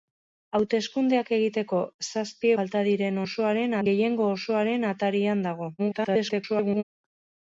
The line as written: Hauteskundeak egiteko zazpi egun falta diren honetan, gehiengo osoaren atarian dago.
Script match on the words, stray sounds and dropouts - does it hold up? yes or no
no